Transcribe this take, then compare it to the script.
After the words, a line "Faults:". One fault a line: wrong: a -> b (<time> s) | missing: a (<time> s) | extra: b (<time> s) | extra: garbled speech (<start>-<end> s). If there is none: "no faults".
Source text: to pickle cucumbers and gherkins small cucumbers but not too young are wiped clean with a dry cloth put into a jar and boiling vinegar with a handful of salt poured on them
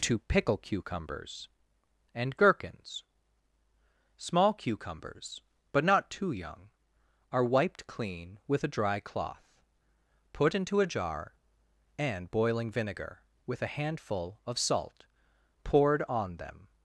to pickle cucumbers and gherkins small cucumbers but not too young are wiped clean with a dry cloth put into a jar and boiling vinegar with a handful of salt poured on them
Faults:
no faults